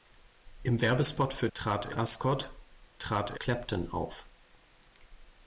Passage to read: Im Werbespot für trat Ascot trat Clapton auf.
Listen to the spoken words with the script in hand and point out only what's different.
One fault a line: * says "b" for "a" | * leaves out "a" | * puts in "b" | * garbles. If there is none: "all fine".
all fine